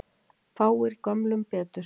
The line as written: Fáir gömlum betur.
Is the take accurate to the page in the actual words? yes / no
yes